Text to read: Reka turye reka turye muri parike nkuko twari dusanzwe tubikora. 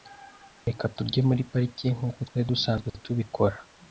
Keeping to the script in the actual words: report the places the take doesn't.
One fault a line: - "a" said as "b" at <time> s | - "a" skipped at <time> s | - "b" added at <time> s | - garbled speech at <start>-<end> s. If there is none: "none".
- "reka turye" skipped at 1.2 s